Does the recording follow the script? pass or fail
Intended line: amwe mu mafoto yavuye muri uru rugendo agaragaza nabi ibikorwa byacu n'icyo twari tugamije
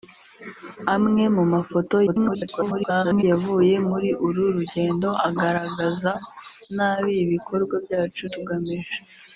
fail